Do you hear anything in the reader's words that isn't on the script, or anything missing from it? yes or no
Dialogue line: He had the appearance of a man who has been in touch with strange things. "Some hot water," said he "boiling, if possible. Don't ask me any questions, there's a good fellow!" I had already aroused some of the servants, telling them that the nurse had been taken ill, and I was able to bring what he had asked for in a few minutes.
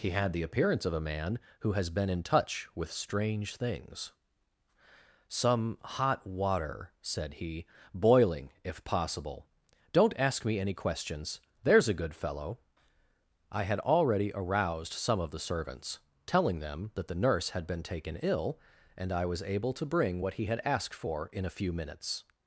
no